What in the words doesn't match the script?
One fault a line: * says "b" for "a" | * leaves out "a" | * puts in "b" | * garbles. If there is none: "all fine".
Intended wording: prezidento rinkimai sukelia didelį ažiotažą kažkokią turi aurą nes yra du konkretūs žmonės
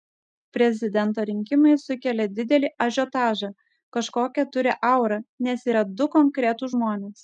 all fine